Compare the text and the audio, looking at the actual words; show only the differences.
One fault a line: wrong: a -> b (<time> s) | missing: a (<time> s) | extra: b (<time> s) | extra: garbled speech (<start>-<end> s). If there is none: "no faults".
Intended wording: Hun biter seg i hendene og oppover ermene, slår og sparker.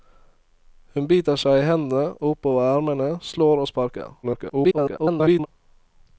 extra: garbled speech (4.2-5.5 s)